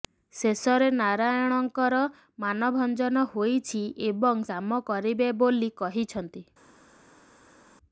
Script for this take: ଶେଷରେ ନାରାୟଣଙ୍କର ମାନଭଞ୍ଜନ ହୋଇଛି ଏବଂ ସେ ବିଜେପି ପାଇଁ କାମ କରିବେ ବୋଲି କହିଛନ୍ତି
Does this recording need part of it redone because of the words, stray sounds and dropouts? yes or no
yes